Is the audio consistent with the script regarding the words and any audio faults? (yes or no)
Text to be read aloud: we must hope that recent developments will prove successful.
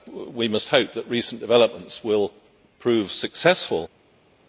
yes